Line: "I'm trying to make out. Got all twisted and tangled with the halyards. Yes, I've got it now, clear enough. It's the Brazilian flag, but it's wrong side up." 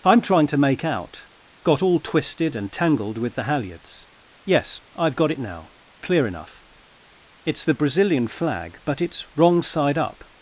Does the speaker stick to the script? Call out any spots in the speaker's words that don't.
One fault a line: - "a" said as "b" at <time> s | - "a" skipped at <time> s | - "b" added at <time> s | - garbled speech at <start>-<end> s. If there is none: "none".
none